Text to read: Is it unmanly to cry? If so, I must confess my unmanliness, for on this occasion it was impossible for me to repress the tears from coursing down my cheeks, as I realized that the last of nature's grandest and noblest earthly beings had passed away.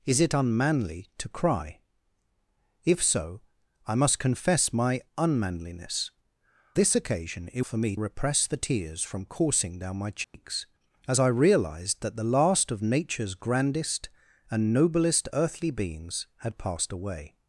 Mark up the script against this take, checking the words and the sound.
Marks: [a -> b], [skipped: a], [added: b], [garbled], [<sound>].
Is it unmanly to cry? If so, I must confess my unmanliness, [skipped: for on] this occasion it [skipped: was impossible] for me [skipped: to] repress the tears from coursing down my cheeks, [dropout] as I realized that the last of nature's grandest and noblest earthly beings had passed away.